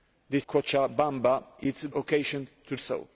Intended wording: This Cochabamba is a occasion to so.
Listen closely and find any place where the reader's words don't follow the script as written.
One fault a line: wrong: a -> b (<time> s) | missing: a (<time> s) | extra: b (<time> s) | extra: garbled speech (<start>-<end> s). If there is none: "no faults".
no faults